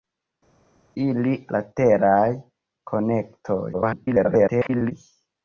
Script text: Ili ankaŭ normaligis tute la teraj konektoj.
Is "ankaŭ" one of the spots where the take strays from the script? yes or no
yes